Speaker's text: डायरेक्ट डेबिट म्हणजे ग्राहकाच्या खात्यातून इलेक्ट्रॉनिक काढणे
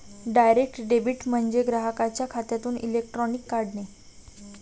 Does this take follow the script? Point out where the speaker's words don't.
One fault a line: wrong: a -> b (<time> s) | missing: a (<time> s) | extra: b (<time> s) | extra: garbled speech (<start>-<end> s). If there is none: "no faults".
no faults